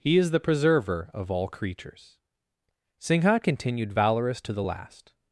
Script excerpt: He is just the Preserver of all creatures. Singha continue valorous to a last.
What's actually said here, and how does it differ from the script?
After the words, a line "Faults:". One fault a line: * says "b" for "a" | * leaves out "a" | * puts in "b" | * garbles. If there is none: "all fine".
He is the Preserver of all creatures. Singha continued valorous to the last.
Faults:
* leaves out "just"
* says "continued" for "continue"
* says "the" for "a"